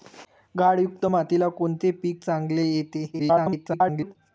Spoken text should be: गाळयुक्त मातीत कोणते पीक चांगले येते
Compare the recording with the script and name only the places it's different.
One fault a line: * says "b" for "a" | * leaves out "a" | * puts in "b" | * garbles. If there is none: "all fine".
* garbles